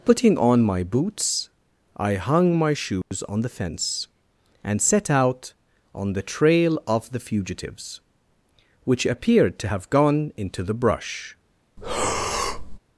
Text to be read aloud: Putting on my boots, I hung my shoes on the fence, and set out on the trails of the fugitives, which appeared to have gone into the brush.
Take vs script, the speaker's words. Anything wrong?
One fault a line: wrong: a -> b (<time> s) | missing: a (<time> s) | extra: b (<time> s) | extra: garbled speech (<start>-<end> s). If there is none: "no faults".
wrong: trails -> trail (6.2 s)